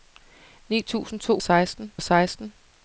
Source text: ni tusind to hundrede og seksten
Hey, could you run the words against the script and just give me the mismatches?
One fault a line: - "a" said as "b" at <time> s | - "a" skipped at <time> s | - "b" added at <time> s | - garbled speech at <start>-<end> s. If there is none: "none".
- "hundrede" said as "seksten" at 1.4 s